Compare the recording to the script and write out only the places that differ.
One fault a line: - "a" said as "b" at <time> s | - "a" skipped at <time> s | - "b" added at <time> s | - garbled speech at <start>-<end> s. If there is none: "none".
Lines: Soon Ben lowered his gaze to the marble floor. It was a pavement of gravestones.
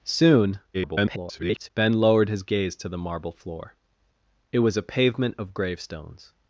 - garbled speech at 0.7-1.7 s